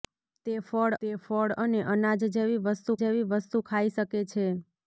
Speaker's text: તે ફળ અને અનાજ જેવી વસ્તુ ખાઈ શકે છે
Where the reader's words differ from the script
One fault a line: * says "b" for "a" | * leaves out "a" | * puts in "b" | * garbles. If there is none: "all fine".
* puts in "તે ફળ"
* puts in "જેવી વસ્તુ"